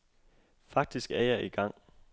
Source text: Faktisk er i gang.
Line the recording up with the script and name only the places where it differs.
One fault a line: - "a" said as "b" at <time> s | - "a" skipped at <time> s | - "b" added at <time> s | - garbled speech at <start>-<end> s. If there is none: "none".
- "jeg" added at 1.2 s